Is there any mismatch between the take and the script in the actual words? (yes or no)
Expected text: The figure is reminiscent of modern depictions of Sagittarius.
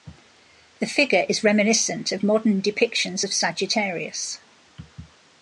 no